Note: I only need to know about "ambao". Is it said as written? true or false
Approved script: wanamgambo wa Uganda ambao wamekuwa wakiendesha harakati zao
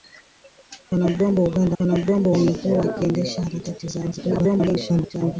false